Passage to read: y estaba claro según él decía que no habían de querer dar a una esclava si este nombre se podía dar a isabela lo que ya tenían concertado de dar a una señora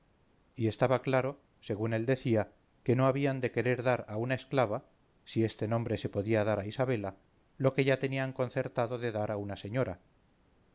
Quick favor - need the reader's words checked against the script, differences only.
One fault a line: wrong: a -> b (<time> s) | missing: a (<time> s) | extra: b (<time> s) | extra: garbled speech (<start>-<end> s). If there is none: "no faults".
no faults